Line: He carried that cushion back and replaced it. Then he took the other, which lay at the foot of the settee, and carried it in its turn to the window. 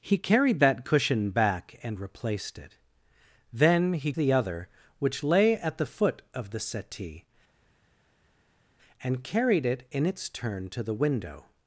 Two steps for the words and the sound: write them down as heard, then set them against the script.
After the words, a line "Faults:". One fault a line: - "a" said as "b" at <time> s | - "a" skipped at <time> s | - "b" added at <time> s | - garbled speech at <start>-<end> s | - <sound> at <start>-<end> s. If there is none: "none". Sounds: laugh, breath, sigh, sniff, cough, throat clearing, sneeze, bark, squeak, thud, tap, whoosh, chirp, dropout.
He carried that cushion back and replaced it. Then he the other, which lay at the foot of the settee, and carried it in its turn to the window.
Faults:
- "took" skipped at 4.1 s